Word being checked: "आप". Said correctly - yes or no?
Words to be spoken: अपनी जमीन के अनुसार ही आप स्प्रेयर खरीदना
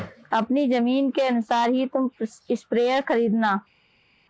no